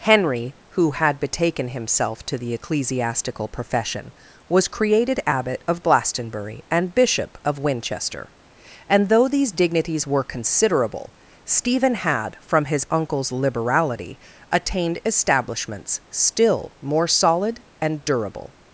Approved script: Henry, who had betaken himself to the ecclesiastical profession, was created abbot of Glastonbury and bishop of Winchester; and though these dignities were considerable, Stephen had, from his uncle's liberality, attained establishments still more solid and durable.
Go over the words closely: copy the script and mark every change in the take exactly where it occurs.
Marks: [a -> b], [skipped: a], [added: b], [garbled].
Henry, who had betaken himself to the ecclesiastical profession, was created abbot of Glastonbury and bishop of Winchester; and though these dignities were considerable, Stephen had, from his uncle's liberality, attained establishments still more solid and durable.